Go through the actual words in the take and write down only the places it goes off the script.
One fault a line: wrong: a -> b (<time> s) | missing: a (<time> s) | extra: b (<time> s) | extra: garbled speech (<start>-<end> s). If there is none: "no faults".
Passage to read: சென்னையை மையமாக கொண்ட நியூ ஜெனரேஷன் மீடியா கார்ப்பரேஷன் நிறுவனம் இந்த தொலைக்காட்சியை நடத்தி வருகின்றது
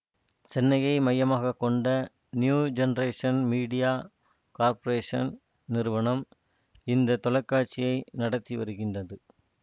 no faults